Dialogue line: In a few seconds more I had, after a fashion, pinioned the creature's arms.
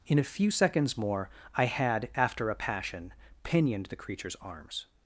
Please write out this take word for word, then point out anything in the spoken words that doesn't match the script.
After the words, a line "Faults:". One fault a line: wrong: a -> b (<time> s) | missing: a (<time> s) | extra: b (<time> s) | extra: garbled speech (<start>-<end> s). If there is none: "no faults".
In a few seconds more I had, after a passion, pinioned the creature's arms.
Faults:
wrong: fashion -> passion (2.5 s)